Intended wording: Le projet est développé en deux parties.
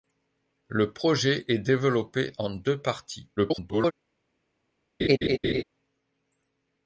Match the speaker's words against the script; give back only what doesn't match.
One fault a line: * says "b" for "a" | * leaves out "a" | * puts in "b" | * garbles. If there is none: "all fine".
* garbles